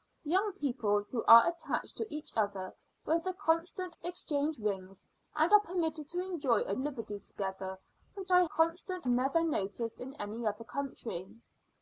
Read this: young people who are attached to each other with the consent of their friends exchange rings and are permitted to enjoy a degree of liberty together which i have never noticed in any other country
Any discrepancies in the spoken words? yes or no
yes